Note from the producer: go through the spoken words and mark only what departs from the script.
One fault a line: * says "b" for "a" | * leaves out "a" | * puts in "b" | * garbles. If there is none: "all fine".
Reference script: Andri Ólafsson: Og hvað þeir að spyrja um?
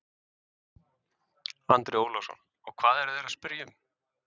* puts in "eru"